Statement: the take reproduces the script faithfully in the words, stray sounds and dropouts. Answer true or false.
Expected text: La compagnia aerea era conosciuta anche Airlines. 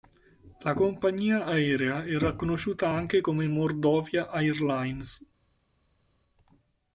false